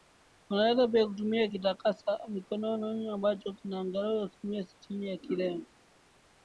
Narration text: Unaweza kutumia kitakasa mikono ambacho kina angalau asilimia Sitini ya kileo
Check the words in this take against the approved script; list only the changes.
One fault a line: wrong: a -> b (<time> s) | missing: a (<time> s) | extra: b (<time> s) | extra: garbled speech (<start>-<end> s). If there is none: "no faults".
extra: pia (0.9 s)